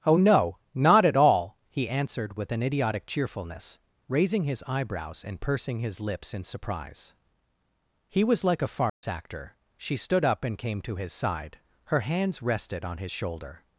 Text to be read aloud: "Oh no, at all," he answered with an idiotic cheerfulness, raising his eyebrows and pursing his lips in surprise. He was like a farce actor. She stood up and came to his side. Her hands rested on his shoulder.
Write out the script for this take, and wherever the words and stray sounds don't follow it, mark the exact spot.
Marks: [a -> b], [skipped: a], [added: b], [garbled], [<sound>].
"Oh no, [added: not] at all," he answered with an idiotic cheerfulness, raising his eyebrows and pursing his lips in surprise. He was like a farce [dropout] actor. She stood up and came to his side. Her hands rested on his shoulder.